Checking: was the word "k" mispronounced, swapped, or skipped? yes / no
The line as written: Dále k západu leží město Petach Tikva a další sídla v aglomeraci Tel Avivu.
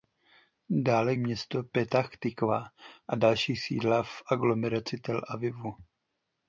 yes